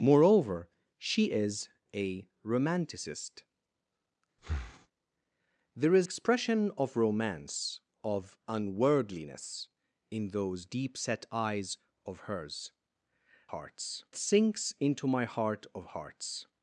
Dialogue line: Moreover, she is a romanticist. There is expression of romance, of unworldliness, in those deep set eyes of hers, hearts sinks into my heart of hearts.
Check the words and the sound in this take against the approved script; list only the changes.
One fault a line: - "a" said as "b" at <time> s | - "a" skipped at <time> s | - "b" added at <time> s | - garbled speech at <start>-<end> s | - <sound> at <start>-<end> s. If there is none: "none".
- breath at 4.4-4.9 s